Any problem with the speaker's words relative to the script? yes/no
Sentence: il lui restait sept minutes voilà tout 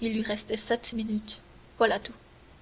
no